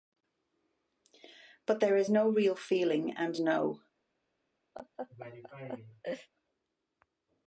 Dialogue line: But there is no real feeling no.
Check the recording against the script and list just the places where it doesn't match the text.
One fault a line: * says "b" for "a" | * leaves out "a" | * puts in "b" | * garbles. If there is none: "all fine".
* puts in "and"